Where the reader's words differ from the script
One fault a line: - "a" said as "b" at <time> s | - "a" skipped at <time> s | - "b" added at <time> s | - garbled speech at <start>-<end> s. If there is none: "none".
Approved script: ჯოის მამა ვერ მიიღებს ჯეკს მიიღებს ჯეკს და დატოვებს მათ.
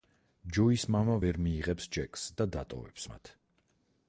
- "მიიღებს ჯეკს" skipped at 2.3 s